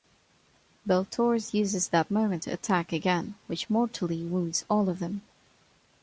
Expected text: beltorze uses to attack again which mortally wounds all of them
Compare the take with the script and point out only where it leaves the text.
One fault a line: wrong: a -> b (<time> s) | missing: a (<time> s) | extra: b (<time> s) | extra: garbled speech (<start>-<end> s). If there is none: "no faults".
extra: that moment (1.9 s)